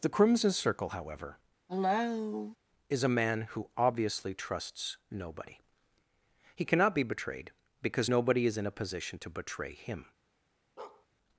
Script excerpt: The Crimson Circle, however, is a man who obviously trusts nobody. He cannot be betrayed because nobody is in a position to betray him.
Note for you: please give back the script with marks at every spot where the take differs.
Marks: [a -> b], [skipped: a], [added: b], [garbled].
The Crimson Circle, however, is a man who obviously trusts nobody. He cannot be betrayed because nobody is in a position to betray him.